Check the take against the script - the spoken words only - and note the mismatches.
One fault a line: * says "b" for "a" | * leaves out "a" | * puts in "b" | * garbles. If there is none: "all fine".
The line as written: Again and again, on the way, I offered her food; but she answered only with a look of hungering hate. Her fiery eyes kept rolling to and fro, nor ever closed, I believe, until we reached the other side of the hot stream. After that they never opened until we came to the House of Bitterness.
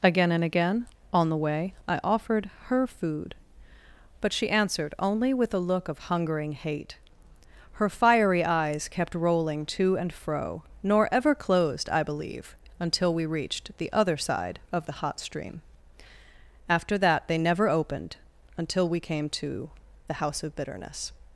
all fine